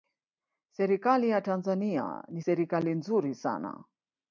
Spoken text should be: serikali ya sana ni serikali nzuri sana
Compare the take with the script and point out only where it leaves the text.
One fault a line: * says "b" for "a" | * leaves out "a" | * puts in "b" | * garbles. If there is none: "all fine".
* says "tanzania" for "sana"